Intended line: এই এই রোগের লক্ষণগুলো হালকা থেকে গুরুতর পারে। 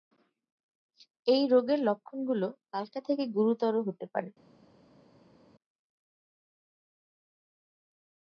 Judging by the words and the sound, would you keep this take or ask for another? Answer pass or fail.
fail